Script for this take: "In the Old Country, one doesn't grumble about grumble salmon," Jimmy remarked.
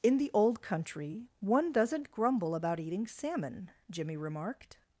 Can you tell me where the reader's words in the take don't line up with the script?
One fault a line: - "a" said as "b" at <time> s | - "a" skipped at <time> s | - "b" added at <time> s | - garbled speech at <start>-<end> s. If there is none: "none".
- "grumble" said as "eating" at 2.8 s